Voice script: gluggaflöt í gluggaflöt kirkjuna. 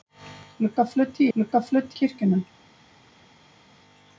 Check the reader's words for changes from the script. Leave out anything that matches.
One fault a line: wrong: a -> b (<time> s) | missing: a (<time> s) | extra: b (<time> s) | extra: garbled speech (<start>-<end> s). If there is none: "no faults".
no faults